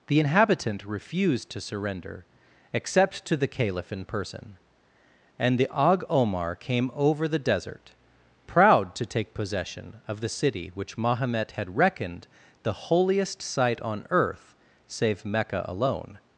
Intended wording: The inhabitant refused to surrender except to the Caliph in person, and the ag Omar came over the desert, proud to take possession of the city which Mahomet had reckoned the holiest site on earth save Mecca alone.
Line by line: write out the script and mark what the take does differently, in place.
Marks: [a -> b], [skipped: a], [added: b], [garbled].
The inhabitant refused to surrender except to the Caliph in person, and the ag Omar came over the desert, proud to take possession of the city which Mahomet had reckoned the holiest site on earth save Mecca alone.